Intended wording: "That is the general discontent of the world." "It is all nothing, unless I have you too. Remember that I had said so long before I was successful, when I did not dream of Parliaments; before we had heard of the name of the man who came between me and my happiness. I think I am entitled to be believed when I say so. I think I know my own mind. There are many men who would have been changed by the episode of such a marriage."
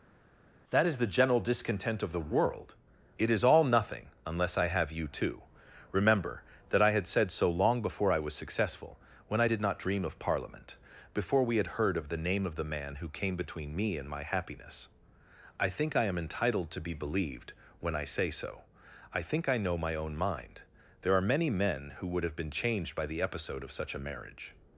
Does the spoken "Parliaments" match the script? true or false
false